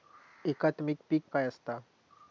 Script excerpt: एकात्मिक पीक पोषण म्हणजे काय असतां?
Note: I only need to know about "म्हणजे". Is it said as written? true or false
false